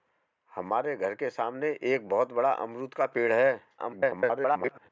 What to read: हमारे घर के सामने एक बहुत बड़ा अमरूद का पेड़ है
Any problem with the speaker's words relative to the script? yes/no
yes